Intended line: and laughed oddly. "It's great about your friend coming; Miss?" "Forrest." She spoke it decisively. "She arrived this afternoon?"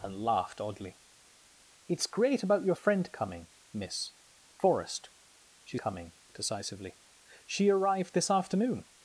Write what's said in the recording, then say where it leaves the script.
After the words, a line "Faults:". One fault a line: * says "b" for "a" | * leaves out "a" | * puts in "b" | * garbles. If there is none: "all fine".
and laughed oddly. "It's great about your friend coming; Miss?" "Forrest." She coming it decisively. "She arrived this afternoon?"
Faults:
* says "coming" for "spoke"